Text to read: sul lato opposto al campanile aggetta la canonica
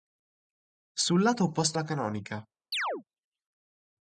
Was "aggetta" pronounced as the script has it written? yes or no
no